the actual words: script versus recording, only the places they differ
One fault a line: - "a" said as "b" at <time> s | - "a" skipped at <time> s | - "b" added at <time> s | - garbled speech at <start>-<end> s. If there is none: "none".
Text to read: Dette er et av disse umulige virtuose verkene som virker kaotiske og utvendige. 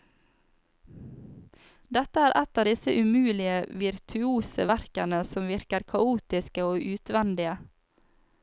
none